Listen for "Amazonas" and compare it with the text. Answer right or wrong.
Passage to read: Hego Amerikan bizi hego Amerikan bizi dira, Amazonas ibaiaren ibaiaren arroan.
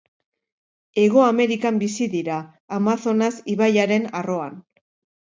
right